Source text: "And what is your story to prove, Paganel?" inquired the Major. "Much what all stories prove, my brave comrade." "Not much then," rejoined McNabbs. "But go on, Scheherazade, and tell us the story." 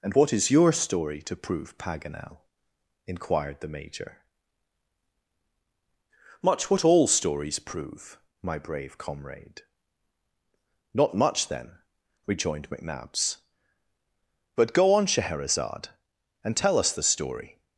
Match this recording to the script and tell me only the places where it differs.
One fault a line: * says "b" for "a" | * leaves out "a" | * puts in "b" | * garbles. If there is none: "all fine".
all fine